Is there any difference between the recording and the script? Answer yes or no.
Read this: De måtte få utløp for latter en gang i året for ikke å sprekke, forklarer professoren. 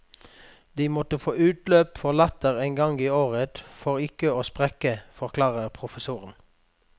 no